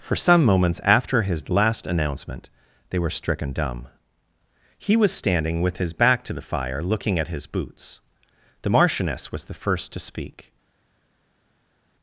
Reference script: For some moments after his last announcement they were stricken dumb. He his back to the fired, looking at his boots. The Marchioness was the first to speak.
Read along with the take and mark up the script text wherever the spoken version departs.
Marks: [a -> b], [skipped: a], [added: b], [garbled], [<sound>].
For some moments after his last announcement they were stricken dumb. He [added: was standing with] his back to the [fired, -> fire] looking at his boots. The Marchioness was the first to speak.